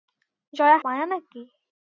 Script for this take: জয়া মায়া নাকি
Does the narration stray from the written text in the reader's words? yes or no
no